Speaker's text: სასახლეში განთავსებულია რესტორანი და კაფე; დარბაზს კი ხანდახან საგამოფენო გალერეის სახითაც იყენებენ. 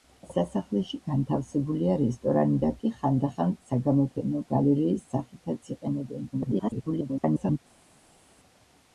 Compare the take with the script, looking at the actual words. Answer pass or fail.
fail